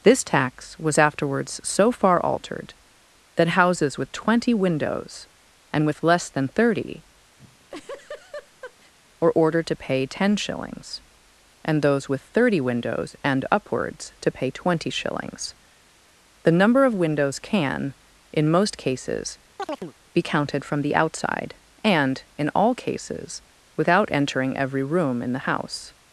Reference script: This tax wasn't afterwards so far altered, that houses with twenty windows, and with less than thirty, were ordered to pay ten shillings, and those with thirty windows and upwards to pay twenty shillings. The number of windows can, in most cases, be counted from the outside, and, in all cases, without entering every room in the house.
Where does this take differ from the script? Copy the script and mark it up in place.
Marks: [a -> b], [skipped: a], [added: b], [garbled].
This tax [wasn't -> was] afterwards so far altered, that houses with twenty windows, and with less than thirty, were ordered to pay ten shillings, and those with thirty windows and upwards to pay twenty shillings. The number of windows can, in most cases, be counted from the outside, and, in all cases, without entering every room in the house.